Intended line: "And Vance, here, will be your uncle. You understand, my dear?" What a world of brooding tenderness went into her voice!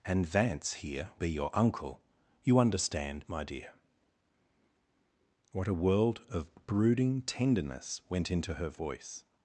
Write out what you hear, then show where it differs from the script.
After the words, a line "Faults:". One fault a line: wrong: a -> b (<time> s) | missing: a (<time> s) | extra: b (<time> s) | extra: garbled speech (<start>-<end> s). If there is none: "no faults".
"And Vance, here, be your uncle. You understand, my dear?" What a world of brooding tenderness went into her voice!
Faults:
missing: will (1.1 s)